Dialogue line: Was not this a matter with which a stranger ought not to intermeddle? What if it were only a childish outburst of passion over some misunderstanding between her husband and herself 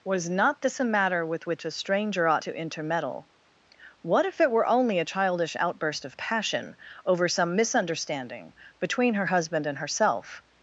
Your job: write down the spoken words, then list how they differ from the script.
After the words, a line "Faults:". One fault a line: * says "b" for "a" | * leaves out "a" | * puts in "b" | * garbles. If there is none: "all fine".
Was not this a matter with which a stranger ought to intermeddle? What if it were only a childish outburst of passion over some misunderstanding between her husband and herself
Faults:
* leaves out "not"